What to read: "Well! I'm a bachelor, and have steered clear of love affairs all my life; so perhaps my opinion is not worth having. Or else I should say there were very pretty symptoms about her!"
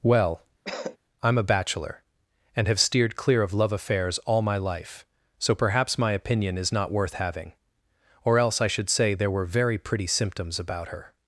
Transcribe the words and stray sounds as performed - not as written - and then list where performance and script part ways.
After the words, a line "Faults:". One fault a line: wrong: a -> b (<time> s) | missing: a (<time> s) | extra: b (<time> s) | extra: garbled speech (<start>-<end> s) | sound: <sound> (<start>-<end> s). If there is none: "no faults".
"Well! I'm a bachelor, and have steered clear of love affairs all my life; so perhaps my opinion is not worth having. Or else I should say there were very pretty symptoms about her!"
Faults:
sound: cough (0.6-1.0 s)